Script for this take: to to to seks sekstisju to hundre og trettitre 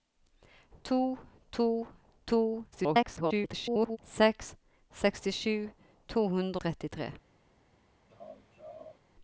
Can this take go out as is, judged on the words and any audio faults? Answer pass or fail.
fail